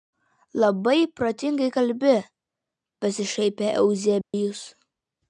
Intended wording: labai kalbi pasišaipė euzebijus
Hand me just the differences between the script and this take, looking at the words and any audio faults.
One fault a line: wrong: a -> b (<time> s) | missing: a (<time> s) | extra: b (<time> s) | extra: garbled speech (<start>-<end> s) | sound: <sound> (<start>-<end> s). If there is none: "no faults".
extra: protingai (1.2 s)
sound: dropout (4.2-4.3 s)